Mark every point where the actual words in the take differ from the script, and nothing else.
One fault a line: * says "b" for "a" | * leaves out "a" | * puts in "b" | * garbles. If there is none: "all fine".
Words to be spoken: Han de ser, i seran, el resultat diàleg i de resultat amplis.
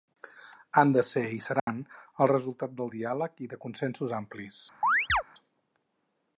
* puts in "del"
* says "consensos" for "resultat"